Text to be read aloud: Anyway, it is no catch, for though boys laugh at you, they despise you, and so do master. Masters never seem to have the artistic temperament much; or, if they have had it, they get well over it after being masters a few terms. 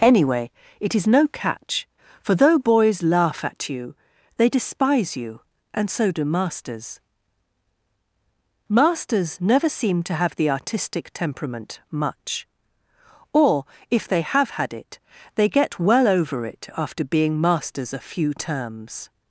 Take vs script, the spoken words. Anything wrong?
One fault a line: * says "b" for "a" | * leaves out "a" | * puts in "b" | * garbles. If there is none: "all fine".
* says "masters" for "master"